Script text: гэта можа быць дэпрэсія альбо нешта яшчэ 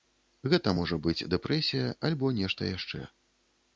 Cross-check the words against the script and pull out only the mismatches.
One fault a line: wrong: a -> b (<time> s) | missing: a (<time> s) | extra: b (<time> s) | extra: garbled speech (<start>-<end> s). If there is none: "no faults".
no faults